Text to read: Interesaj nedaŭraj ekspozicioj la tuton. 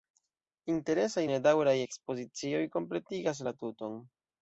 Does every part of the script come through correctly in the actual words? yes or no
no